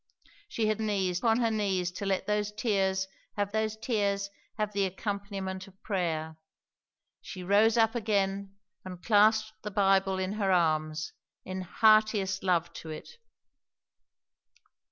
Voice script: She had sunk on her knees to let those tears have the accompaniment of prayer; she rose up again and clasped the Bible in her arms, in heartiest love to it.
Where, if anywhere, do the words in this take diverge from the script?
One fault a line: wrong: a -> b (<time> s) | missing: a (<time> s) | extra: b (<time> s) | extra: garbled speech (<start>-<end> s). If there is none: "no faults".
wrong: sunk -> knees (0.8 s)
extra: those tears have (3.5 s)